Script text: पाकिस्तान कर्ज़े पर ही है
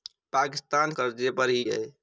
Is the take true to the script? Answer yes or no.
yes